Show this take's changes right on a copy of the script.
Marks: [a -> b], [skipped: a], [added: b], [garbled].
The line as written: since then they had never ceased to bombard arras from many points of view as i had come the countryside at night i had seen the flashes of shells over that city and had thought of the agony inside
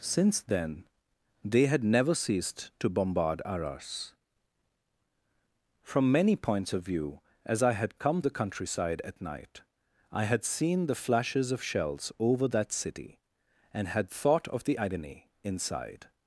since then they had never ceased to bombard arras from many points of view as i had come the countryside at night i had seen the flashes of shells over that city and had thought of the agony inside